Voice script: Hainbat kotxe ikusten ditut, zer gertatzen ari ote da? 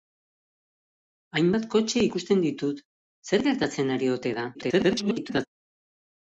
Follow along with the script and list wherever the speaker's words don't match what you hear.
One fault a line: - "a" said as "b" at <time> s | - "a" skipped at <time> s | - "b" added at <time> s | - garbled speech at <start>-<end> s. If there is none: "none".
- garbled speech at 4.5-5.5 s